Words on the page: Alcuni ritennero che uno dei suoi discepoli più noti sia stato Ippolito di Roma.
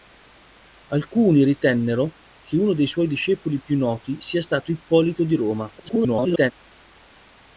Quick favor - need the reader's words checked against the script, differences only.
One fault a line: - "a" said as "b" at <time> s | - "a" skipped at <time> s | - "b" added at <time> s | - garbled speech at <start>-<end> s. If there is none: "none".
- garbled speech at 5.8-6.5 s